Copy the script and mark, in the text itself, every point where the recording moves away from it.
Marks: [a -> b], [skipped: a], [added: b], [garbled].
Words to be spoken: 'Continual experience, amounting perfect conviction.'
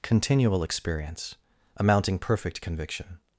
'Continual experience, amounting perfect conviction.'